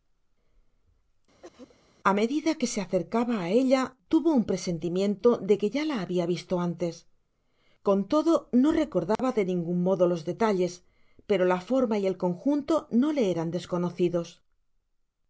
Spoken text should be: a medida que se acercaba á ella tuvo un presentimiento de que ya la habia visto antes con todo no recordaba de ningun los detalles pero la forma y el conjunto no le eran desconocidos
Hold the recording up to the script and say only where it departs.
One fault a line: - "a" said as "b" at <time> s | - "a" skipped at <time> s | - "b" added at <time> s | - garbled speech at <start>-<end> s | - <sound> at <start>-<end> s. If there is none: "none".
- cough at 1.4-1.8 s
- dropout at 9.2-9.2 s
- "modo" added at 9.9 s